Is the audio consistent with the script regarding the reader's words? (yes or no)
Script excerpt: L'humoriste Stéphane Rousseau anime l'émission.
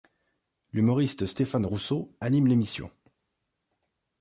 yes